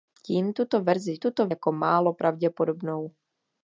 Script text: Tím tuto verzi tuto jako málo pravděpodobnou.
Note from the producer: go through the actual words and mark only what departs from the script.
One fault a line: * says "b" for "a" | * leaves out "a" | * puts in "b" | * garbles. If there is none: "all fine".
all fine